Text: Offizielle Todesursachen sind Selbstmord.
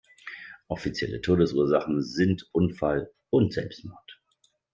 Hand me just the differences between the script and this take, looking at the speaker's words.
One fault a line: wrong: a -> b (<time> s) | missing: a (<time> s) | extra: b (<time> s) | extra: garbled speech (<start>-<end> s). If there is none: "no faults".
extra: Unfall und (2.5 s)